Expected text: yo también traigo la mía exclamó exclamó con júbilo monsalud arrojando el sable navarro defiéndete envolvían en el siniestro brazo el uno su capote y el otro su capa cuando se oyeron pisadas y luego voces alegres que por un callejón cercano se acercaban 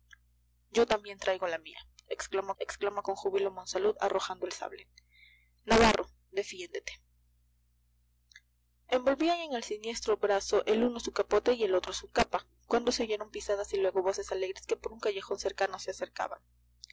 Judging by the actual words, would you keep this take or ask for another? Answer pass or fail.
pass